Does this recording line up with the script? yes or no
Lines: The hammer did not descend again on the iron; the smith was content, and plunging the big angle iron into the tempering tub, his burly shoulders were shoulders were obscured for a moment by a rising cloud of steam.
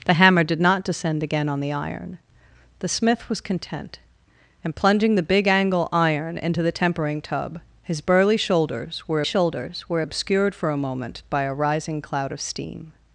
yes